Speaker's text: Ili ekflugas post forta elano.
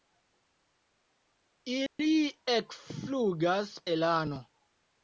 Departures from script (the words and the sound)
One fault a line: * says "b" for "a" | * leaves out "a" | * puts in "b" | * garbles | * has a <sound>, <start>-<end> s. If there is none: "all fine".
* has a dropout, 1.9-2.0 s
* leaves out "post forta"